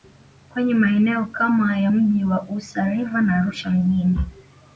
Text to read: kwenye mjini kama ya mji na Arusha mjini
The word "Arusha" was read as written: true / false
true